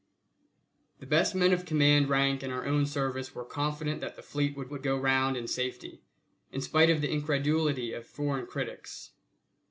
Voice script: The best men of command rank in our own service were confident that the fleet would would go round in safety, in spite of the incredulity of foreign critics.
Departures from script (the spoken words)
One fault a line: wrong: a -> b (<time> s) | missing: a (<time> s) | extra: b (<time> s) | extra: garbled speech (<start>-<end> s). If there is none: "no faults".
no faults